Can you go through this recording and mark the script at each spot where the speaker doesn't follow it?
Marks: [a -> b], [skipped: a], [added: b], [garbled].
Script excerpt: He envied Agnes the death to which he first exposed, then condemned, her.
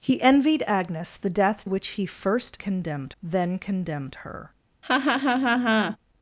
He envied Agnes the death [skipped: to] which he first [exposed, -> condemned] then condemned, her.